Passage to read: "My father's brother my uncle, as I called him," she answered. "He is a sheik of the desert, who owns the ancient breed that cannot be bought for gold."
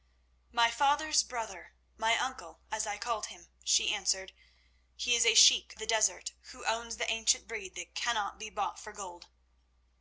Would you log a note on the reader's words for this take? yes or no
yes